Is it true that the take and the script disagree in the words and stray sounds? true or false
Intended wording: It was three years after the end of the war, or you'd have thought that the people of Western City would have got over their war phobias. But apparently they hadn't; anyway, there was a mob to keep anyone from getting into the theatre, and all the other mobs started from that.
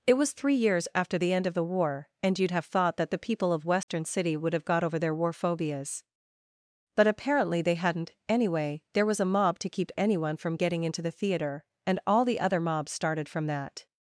true